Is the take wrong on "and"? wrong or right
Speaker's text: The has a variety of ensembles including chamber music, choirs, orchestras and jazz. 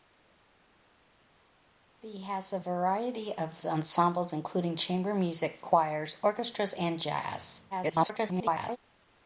right